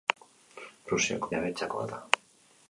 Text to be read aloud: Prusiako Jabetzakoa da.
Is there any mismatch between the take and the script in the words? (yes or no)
no